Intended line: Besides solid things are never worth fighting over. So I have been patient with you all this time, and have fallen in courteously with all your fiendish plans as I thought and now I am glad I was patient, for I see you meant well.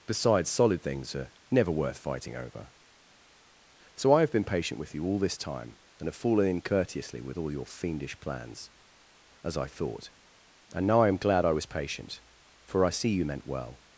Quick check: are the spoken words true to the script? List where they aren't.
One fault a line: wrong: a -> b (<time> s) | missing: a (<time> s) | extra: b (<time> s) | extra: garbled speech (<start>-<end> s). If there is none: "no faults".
no faults